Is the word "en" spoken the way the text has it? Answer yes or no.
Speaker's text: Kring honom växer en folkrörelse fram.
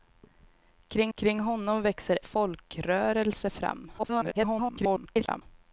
no